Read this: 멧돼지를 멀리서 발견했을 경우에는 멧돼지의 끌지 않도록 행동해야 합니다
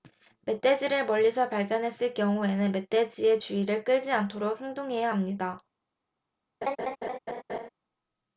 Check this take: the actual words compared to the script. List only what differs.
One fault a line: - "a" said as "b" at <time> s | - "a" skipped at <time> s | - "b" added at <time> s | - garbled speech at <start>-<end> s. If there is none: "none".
- "주의를" added at 3.4 s